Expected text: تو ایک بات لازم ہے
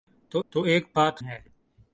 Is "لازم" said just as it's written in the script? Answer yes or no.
no